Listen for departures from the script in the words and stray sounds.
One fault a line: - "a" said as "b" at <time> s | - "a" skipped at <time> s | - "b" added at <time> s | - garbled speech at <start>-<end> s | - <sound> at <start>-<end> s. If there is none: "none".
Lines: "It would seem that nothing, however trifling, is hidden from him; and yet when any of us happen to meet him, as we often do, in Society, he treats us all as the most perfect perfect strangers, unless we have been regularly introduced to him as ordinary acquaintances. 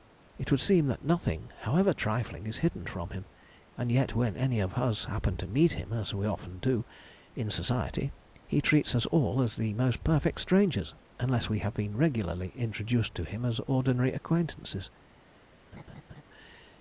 - "perfect" skipped at 10.4 s
- laugh at 15.7-16.2 s